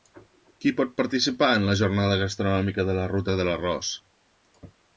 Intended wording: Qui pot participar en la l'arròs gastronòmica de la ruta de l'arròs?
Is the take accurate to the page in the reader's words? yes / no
no